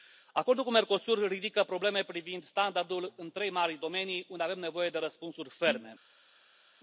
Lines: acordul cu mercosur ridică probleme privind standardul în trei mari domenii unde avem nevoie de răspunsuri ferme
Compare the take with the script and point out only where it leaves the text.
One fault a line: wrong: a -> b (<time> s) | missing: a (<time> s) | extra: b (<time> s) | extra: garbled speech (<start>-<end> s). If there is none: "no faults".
no faults